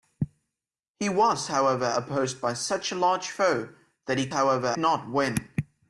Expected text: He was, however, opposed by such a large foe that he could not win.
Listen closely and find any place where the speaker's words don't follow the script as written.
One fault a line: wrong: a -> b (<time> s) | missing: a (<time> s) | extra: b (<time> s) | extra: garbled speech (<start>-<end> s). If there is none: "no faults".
wrong: could -> however (4.3 s)